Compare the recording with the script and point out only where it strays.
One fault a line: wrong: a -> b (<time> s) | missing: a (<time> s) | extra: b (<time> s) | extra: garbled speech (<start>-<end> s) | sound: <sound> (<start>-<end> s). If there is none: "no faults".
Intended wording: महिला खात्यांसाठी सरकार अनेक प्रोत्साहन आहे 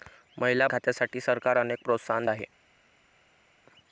no faults